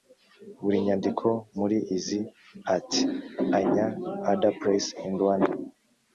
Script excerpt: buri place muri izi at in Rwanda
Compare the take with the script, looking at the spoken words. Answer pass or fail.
fail